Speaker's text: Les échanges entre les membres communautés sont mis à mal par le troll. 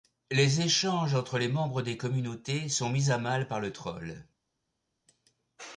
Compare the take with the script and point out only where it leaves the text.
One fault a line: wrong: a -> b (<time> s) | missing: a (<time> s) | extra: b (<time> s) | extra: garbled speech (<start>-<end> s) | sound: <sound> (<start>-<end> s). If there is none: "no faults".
extra: des (1.8 s)